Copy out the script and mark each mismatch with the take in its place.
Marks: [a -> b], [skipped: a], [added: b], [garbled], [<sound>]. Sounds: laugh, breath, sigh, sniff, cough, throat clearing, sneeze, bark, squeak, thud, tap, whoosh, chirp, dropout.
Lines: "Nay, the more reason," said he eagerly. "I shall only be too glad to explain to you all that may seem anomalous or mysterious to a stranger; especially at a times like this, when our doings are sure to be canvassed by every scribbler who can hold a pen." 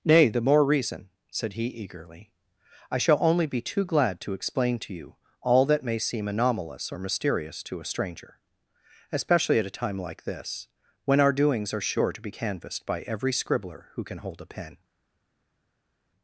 "Nay, the more reason," said he eagerly. "I shall only be too glad to explain to you all that may seem anomalous or mysterious to a stranger; especially at a [times -> time] like this, when our doings are sure to be canvassed by every scribbler who can hold a pen."